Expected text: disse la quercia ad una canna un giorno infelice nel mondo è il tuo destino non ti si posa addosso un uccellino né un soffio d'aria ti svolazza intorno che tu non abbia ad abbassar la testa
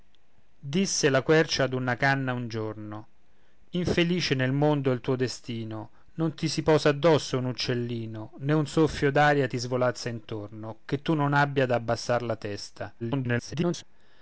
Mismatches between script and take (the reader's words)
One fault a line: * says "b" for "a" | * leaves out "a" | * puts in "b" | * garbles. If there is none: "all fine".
* garbles